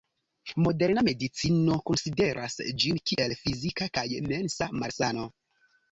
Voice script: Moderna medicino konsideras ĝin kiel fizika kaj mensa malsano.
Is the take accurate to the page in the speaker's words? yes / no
yes